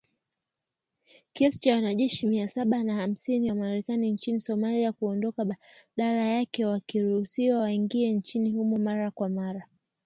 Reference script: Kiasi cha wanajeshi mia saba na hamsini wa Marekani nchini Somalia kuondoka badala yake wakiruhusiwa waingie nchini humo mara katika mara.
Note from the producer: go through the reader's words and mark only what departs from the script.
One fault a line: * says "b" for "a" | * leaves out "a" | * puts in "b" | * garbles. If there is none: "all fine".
* says "kwa" for "katika"